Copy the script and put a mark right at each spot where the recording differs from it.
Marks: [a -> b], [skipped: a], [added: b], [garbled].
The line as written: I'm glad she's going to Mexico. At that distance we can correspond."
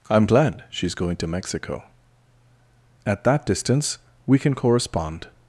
I'm glad she's going to Mexico. At that distance we can correspond."